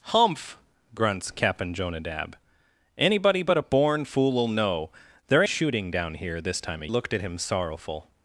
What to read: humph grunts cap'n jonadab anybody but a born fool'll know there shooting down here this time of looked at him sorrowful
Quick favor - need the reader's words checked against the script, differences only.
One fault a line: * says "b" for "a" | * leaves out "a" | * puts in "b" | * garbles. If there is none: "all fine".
all fine